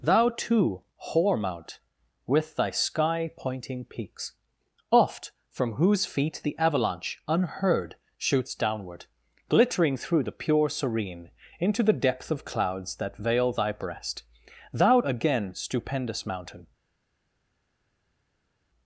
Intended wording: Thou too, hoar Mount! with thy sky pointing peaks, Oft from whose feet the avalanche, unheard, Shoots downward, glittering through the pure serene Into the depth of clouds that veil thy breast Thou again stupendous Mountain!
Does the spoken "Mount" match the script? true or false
true